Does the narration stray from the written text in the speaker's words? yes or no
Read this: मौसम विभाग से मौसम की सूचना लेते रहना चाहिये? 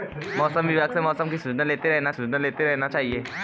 yes